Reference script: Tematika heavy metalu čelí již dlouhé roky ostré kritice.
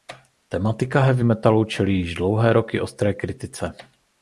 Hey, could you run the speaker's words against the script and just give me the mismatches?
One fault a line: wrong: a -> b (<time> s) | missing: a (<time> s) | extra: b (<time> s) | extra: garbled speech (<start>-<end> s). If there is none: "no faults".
no faults